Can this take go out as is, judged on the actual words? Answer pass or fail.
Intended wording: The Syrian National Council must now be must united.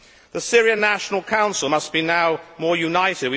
fail